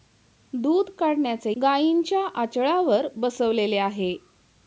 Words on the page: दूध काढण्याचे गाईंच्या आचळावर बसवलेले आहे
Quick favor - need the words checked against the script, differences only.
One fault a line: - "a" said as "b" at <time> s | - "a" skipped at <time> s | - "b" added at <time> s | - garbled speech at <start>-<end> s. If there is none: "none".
none